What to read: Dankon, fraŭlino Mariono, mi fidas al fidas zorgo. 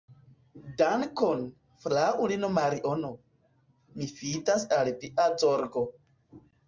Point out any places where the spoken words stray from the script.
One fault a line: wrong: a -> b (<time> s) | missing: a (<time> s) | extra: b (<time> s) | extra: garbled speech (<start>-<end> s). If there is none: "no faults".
wrong: fidas -> via (5.0 s)